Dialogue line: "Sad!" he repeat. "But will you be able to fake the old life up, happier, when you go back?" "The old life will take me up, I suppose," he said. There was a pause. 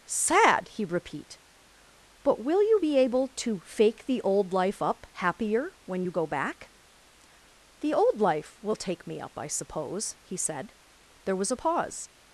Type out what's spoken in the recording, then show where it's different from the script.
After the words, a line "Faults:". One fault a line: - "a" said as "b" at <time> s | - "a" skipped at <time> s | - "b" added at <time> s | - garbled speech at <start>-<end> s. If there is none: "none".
"Sad!" he repeat. "But will you be able to fake the old life up, happier, when you go back?" "The old life will take me up, I suppose," he said. There was a pause.
Faults:
none